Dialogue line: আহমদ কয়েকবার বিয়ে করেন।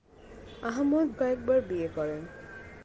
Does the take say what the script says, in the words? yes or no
yes